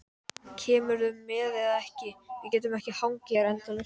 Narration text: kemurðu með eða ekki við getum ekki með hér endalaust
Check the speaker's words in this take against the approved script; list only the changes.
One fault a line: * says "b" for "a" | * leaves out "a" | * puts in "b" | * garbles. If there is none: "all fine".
* says "hangið" for "með"